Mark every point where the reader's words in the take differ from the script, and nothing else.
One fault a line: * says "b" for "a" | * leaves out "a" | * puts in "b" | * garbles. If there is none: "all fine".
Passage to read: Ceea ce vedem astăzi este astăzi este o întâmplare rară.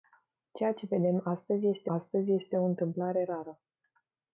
all fine